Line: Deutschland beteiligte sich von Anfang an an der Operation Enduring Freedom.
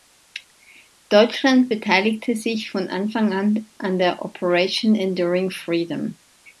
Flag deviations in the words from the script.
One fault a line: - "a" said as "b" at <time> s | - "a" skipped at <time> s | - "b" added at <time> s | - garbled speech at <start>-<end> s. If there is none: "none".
none